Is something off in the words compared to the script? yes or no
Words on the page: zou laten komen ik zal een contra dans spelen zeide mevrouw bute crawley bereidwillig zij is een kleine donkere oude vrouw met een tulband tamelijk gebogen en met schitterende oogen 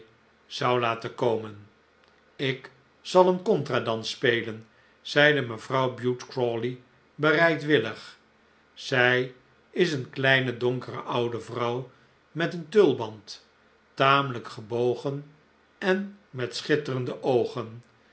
no